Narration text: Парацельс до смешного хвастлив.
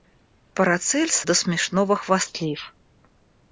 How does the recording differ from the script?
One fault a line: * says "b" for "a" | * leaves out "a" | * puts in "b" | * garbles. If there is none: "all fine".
all fine